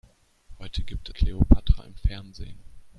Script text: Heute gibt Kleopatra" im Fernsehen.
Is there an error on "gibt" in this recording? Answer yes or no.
no